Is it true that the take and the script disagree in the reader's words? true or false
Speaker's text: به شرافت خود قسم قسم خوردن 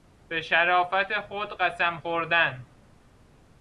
true